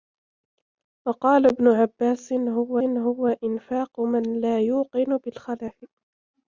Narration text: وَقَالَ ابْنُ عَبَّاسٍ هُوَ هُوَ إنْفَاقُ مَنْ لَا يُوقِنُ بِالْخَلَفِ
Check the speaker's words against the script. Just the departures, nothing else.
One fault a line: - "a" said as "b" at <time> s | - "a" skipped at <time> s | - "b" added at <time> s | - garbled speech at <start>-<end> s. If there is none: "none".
none